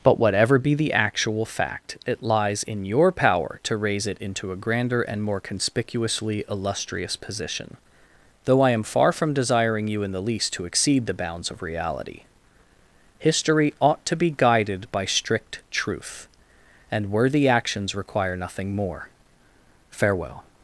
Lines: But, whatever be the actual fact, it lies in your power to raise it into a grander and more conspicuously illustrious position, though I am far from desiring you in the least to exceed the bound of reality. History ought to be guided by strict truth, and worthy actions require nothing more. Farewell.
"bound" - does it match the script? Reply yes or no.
no